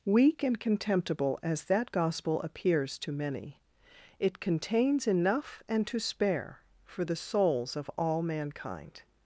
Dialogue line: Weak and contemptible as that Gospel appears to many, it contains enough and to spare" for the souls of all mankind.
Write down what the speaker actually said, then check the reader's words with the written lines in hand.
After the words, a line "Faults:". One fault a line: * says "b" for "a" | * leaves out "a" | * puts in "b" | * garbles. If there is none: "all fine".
Weak and contemptible as that Gospel appears to many, it contains enough and to spare" for the souls of all mankind.
Faults:
all fine